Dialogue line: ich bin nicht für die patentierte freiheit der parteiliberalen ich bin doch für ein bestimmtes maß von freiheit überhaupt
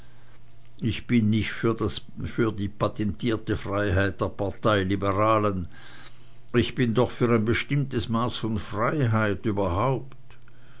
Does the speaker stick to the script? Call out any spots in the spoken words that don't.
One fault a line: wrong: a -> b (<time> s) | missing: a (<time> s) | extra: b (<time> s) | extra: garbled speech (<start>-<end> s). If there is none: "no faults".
no faults